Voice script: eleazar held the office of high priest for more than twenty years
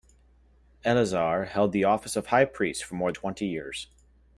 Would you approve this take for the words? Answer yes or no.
no